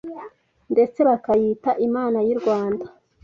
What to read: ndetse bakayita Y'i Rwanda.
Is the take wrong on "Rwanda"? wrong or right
right